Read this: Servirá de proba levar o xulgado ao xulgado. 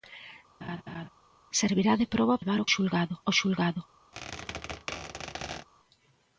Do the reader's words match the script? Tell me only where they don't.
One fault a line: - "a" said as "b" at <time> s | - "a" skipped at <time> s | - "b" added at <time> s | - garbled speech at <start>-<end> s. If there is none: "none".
none